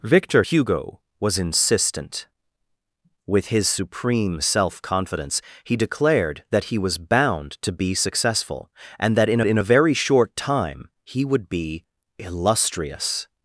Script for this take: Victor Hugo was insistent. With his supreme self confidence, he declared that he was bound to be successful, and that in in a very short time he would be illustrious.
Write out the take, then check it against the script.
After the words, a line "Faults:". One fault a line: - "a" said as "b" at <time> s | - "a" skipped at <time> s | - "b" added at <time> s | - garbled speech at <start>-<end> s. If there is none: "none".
Victor Hugo was insistent. With his supreme self confidence, he declared that he was bound to be successful, and that in in a very short time he would be illustrious.
Faults:
none